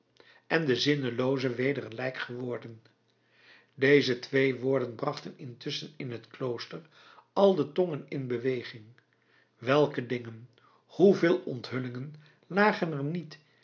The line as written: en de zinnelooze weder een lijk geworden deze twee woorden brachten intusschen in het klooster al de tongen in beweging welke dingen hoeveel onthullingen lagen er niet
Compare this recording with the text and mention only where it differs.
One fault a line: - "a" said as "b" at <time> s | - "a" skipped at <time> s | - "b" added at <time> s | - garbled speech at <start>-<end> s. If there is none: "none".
none